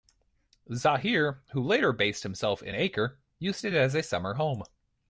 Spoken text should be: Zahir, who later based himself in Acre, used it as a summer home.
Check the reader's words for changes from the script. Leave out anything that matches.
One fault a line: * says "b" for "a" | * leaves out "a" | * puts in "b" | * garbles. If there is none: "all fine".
all fine